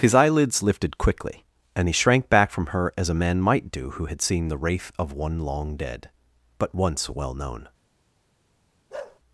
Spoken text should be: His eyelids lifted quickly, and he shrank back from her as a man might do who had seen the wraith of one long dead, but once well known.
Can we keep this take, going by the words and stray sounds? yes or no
no